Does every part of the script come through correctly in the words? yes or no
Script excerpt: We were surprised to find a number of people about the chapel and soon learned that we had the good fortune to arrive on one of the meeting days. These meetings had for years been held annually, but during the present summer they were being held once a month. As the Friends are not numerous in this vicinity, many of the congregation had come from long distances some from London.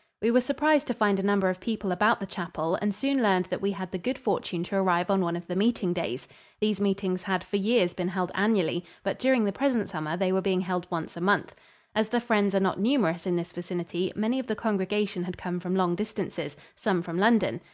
yes